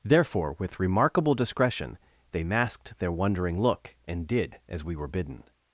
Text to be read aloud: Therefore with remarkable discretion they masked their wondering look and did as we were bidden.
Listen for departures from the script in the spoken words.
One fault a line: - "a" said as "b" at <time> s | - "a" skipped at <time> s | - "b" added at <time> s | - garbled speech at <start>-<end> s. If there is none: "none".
none